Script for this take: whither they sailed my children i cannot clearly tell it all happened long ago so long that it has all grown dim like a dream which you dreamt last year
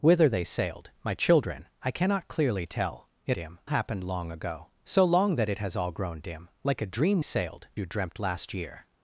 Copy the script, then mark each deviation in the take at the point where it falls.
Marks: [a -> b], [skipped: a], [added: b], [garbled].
whither they sailed my children i cannot clearly tell it [all -> dim] happened long ago so long that it has all grown dim like a dream [which -> sailed] you dreamt last year